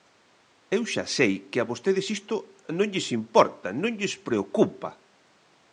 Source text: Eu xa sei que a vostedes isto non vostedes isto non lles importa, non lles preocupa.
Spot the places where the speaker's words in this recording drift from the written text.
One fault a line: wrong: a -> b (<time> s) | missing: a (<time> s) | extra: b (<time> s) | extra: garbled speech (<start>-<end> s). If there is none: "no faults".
missing: vostedes isto non (2.9 s)